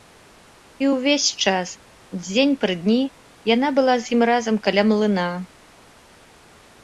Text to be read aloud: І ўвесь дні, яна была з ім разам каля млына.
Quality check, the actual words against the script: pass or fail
fail